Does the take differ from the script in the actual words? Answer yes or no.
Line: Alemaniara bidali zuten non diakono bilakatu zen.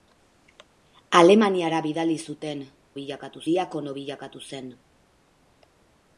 yes